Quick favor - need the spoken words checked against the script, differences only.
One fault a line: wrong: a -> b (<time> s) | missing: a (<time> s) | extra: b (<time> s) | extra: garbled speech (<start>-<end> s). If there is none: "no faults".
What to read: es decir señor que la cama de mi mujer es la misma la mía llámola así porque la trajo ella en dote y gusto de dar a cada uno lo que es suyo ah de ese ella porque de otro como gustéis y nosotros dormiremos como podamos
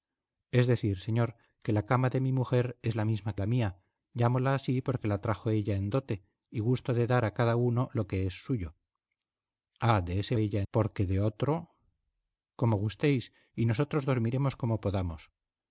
no faults